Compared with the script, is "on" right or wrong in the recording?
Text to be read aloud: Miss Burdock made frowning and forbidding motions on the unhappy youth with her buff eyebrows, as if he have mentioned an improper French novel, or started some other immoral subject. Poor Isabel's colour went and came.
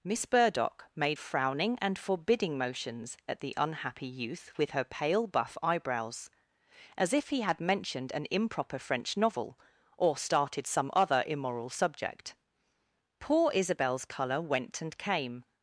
wrong